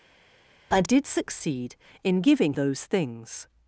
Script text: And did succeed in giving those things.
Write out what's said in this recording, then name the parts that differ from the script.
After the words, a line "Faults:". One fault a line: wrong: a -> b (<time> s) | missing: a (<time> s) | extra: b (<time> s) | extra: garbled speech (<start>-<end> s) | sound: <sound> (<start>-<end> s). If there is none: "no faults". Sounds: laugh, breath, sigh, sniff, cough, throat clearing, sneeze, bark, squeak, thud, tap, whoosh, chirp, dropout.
And did succeed in giving those things.
Faults:
no faults